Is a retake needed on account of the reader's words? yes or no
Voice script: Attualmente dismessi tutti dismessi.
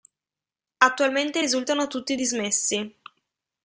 yes